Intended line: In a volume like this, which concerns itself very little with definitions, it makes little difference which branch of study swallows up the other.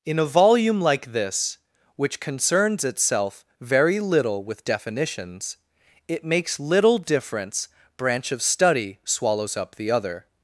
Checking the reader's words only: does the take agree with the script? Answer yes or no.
no